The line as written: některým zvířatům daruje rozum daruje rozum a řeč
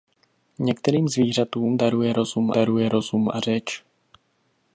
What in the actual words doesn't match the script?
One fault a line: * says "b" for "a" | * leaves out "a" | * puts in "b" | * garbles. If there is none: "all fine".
all fine